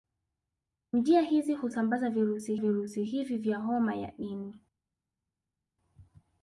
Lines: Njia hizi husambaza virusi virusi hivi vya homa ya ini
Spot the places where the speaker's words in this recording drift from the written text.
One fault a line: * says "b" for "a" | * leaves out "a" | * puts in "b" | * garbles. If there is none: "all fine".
all fine